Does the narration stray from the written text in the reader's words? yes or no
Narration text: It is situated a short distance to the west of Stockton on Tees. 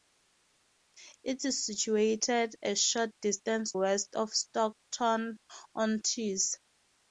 yes